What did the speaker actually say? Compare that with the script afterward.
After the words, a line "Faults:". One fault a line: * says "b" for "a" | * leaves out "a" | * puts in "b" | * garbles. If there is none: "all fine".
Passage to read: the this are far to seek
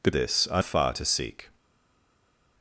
the this are far to seek
Faults:
all fine